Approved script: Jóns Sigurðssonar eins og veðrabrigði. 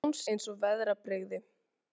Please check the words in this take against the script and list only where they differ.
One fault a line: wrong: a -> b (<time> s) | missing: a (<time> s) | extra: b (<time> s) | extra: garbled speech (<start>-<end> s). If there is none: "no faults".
missing: Sigurðssonar (0.2 s)